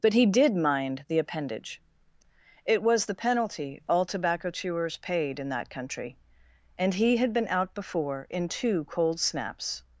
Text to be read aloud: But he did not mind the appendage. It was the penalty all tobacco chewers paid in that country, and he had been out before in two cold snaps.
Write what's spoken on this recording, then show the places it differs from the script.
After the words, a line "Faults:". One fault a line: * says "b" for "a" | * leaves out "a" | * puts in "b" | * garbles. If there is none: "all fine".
But he did mind the appendage. It was the penalty all tobacco chewers paid in that country, and he had been out before in two cold snaps.
Faults:
* leaves out "not"